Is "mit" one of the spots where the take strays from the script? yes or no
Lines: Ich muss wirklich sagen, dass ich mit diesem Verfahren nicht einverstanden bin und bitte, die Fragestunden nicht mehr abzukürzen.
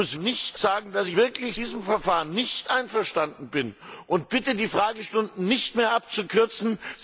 yes